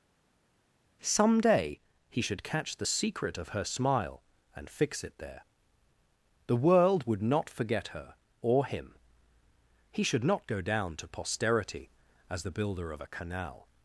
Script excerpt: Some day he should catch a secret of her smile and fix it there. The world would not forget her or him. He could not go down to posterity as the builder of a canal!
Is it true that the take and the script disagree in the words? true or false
true